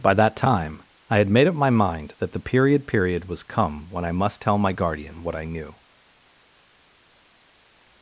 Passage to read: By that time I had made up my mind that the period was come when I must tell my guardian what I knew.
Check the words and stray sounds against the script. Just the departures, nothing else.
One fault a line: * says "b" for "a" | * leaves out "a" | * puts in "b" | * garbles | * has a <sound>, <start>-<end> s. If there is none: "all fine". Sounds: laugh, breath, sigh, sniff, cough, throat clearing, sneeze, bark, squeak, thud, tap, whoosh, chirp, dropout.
* puts in "period"